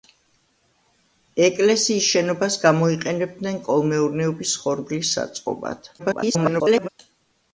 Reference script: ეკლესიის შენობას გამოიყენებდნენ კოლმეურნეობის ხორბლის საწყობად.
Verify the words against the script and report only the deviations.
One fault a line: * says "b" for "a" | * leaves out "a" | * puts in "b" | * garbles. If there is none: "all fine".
* garbles